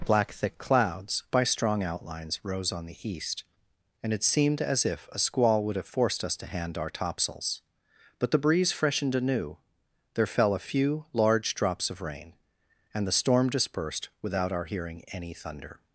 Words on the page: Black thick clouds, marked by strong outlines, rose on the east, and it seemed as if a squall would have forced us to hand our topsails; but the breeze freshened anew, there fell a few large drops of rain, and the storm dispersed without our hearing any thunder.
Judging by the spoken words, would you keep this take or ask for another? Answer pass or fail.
fail